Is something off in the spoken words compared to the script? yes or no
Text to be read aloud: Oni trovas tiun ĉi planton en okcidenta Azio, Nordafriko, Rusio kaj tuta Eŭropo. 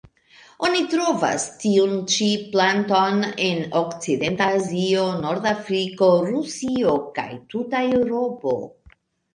no